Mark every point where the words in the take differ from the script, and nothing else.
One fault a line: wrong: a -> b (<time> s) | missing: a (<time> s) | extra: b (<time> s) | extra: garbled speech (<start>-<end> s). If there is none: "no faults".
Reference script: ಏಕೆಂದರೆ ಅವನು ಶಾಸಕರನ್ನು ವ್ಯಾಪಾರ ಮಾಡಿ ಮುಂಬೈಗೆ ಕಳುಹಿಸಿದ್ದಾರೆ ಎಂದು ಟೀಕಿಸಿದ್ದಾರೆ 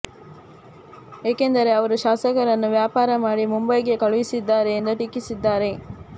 wrong: ಅವನು -> ಅವರು (1.7 s)